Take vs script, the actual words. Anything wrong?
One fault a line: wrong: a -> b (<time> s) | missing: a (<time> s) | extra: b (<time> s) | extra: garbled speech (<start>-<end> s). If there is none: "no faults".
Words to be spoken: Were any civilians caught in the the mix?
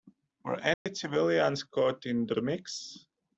no faults